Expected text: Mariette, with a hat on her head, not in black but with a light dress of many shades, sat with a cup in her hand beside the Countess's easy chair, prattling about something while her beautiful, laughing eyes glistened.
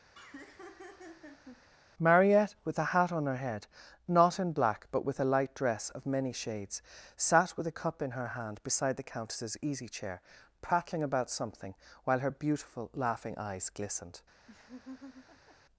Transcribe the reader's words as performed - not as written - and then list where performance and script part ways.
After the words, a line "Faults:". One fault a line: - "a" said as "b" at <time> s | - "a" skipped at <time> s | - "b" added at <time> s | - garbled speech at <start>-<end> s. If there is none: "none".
Mariette, with a hat on her head, not in black but with a light dress of many shades, sat with a cup in her hand beside the Countess's easy chair, prattling about something while her beautiful, laughing eyes glistened.
Faults:
none